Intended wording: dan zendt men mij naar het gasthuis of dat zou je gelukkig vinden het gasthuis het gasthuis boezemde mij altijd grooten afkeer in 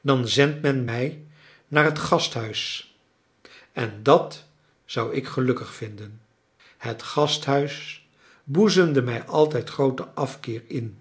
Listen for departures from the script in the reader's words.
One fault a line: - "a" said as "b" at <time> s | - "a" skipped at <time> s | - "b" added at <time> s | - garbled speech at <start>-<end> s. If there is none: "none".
- "of" said as "en" at 3.7 s
- "je" said as "ik" at 5.1 s
- "het gasthuis" skipped at 8.1 s